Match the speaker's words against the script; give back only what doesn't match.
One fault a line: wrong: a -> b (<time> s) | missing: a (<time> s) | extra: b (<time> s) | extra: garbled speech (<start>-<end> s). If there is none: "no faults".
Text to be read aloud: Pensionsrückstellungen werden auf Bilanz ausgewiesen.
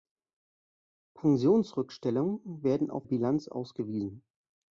no faults